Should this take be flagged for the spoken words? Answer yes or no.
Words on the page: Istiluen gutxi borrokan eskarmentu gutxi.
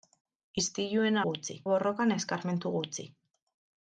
no